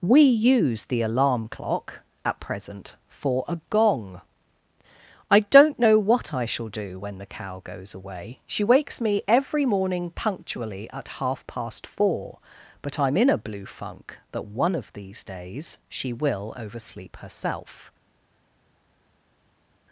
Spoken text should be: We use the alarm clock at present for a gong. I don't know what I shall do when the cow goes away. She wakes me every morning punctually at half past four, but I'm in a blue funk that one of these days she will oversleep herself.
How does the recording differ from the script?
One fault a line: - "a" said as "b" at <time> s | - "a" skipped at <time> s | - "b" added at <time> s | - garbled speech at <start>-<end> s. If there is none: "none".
none